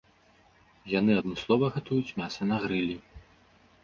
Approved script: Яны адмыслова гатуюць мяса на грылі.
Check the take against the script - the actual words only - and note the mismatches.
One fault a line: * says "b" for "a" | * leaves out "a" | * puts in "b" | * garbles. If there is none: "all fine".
all fine